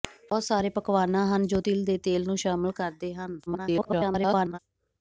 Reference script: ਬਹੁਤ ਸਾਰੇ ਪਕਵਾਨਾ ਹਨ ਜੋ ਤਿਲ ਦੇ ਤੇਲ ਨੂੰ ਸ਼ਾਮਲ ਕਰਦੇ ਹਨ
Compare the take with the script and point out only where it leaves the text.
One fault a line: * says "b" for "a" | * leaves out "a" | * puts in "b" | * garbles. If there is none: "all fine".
* garbles